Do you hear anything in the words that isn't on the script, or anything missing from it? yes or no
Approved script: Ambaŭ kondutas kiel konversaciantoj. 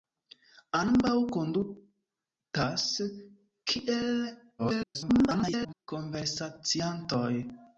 yes